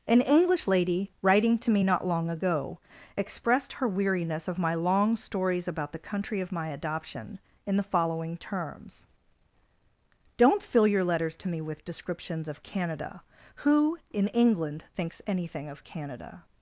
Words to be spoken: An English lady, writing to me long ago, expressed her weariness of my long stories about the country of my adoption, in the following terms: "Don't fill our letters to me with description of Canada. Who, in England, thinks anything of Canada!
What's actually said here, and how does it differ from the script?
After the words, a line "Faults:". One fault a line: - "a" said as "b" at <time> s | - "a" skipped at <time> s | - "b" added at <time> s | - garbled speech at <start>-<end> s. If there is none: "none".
An English lady, writing to me not long ago, expressed her weariness of my long stories about the country of my adoption, in the following terms: "Don't fill your letters to me with descriptions of Canada. Who, in England, thinks anything of Canada!
Faults:
- "not" added at 1.8 s
- "our" said as "your" at 10.9 s
- "description" said as "descriptions" at 11.8 s